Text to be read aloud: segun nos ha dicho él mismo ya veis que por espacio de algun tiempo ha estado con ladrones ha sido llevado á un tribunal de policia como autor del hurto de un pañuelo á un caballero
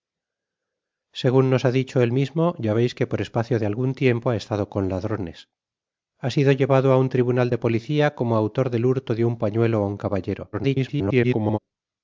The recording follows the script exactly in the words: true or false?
false